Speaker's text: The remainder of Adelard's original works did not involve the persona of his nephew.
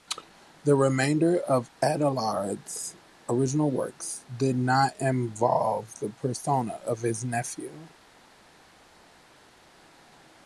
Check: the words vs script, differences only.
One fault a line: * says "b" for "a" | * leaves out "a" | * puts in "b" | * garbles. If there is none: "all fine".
all fine